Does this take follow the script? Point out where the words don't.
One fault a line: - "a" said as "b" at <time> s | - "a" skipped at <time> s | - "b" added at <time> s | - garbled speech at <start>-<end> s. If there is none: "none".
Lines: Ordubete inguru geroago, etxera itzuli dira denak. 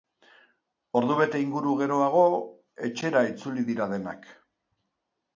none